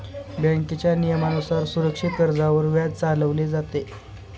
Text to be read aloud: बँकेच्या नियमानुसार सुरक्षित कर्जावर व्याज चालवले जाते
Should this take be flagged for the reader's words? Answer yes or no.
no